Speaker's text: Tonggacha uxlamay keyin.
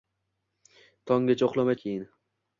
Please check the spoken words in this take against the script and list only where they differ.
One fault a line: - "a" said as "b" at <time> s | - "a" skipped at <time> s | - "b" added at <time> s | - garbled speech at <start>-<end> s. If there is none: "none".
none